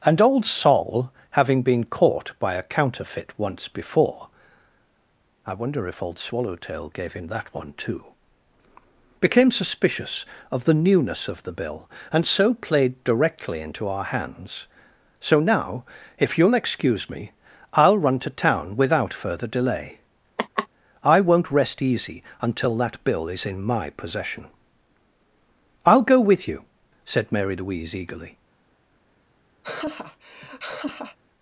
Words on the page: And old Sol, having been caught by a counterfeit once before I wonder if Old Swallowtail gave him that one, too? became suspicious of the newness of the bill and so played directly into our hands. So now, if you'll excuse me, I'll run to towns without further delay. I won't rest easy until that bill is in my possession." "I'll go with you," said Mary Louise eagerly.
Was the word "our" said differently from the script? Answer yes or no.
no